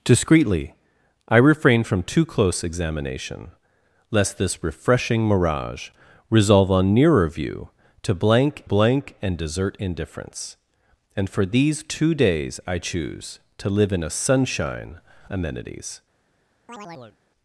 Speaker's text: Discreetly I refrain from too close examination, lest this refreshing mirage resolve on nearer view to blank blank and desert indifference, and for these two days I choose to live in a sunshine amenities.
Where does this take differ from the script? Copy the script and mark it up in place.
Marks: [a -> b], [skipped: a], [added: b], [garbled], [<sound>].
Discreetly I refrain from too close examination, lest this refreshing mirage resolve on nearer view to blank blank and desert indifference, and for these two days I choose to live in a sunshine amenities. [chirp]